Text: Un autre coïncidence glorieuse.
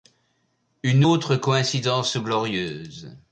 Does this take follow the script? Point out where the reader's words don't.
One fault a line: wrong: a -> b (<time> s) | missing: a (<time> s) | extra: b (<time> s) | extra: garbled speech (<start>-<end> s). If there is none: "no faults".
wrong: Un -> Une (0.8 s)